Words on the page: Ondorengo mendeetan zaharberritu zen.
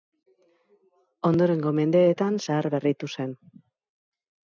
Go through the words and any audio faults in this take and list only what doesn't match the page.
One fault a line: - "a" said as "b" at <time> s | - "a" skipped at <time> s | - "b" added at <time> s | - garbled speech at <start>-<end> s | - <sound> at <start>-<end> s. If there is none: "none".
none